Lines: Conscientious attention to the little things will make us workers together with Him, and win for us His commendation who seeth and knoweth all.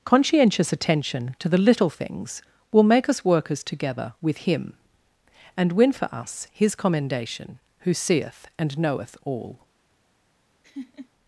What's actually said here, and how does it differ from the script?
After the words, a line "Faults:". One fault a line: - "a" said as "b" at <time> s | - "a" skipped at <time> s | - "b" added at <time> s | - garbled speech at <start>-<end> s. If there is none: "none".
Conscientious attention to the little things will make us workers together with Him, and win for us His commendation who seeth and knoweth all.
Faults:
none